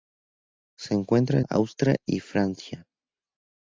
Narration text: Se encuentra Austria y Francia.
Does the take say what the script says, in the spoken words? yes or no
yes